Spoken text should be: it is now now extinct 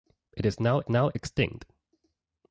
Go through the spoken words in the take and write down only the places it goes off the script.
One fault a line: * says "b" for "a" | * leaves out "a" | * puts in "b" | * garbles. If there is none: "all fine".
all fine